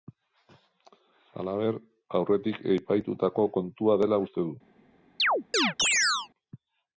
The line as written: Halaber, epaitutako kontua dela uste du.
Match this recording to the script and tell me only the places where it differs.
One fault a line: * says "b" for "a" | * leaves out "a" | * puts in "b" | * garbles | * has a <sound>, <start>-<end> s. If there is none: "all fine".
* puts in "aurretik"
* has a chirp, 5.2-6.3 s